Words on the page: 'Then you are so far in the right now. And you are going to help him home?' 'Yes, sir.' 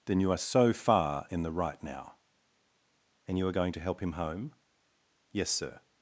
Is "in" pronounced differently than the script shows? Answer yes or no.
no